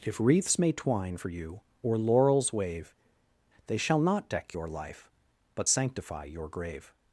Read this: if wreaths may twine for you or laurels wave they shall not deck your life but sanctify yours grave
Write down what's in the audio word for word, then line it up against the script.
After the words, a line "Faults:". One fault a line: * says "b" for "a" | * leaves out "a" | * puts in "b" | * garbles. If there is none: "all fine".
if wreaths may twine for you or laurels wave they shall not deck your life but sanctify your grave
Faults:
* says "your" for "yours"